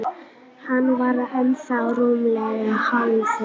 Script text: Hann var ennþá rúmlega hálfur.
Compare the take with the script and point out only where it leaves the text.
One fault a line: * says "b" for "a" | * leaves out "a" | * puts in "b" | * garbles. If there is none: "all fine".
all fine